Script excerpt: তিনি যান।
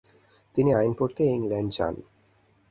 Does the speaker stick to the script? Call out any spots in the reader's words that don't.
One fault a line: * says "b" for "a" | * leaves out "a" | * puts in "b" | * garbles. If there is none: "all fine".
* puts in "আইন পড়তে ইংল্যান্ড"